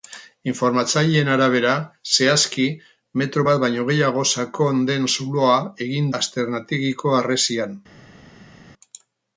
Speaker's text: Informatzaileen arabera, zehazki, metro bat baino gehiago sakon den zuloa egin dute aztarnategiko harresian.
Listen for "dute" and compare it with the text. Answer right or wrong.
wrong